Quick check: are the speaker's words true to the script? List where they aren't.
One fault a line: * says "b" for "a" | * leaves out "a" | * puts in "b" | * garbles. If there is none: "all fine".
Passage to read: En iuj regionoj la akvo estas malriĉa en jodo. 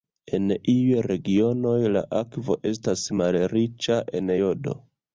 all fine